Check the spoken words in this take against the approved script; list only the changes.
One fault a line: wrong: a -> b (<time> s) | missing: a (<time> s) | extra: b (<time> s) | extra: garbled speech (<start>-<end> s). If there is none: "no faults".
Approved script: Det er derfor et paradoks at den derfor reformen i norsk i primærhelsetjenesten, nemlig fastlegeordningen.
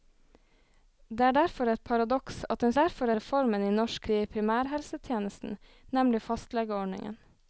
no faults